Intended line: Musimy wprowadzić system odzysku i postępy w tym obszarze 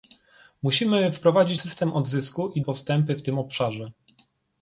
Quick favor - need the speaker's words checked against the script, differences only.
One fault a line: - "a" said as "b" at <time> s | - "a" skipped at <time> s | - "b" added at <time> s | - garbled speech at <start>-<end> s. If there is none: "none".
none